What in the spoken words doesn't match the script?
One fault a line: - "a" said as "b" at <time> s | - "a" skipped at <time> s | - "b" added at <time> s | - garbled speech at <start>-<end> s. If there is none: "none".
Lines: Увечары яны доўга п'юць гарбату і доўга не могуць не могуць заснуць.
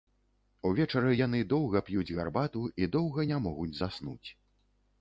- "не могуць" skipped at 3.7 s